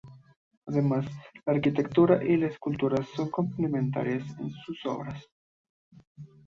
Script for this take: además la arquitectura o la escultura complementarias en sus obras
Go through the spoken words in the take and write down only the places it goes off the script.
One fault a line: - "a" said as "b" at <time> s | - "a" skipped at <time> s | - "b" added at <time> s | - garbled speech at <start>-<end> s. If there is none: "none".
- "o" said as "y" at 2.2 s
- "son" added at 3.1 s